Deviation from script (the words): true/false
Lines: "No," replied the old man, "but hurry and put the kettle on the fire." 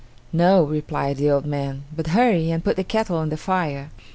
false